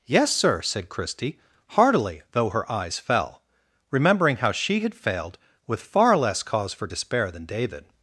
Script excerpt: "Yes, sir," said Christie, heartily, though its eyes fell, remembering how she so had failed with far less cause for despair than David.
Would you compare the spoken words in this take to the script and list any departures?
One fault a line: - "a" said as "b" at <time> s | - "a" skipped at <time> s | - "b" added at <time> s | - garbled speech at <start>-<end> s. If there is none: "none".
- "its" said as "her" at 2.5 s
- "so" skipped at 4.8 s